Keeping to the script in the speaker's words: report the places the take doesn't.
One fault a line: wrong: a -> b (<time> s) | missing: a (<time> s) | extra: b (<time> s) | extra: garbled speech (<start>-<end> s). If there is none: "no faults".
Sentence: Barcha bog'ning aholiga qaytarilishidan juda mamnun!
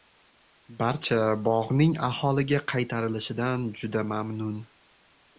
no faults